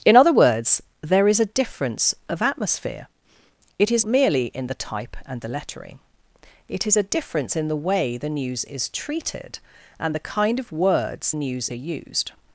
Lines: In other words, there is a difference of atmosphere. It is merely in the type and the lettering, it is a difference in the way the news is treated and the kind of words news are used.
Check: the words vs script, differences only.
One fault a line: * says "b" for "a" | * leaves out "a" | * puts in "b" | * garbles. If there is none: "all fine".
all fine